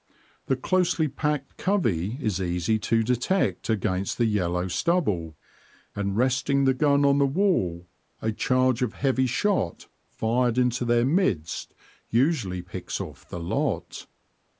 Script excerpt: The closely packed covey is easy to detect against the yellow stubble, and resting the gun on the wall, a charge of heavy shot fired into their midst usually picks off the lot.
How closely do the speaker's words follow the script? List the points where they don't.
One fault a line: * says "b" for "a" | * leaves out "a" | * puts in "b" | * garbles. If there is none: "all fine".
all fine